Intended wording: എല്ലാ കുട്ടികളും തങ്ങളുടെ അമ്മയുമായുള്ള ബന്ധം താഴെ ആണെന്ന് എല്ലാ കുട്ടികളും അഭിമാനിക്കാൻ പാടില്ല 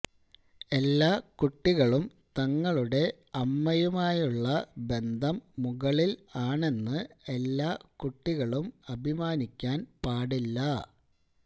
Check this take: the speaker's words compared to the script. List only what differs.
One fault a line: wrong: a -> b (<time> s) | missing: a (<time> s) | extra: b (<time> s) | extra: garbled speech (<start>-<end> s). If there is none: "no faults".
wrong: താഴെ -> മുകളിൽ (5.6 s)